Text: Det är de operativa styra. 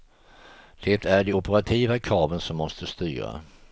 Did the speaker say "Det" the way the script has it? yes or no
yes